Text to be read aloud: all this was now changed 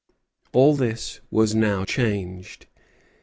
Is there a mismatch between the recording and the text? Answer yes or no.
no